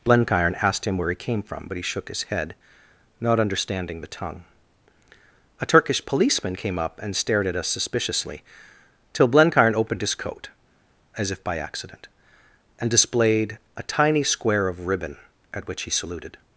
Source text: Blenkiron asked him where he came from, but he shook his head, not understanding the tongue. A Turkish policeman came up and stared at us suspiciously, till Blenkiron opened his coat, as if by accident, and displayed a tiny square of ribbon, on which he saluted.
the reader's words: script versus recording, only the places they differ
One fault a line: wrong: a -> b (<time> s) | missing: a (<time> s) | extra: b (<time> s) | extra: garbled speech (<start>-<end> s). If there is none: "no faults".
wrong: on -> at (15.5 s)